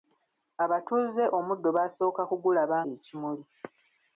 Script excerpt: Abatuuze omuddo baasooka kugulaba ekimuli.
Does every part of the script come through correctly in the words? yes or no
yes